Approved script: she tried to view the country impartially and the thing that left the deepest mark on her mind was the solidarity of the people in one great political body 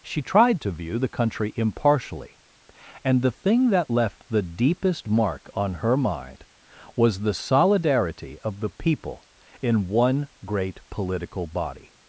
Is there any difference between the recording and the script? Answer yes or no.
no